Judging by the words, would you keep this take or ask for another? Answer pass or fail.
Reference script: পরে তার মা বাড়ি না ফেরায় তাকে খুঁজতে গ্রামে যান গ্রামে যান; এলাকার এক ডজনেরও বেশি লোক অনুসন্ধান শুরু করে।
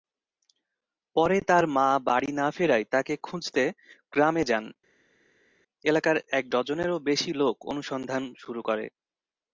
fail